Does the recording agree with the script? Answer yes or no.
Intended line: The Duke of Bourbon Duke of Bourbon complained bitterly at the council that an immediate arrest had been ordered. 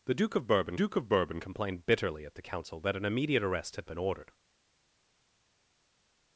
yes